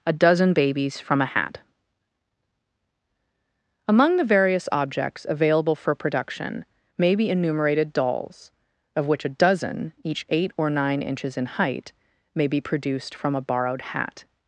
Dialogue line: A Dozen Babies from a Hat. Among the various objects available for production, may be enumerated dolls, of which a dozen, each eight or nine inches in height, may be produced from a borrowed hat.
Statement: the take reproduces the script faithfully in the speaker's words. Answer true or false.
true